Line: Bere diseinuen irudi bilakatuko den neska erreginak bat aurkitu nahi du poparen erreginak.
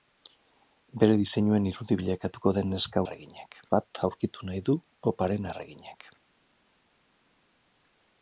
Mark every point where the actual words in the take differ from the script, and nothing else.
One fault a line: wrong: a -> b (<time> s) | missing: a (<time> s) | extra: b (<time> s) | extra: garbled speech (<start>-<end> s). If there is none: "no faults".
no faults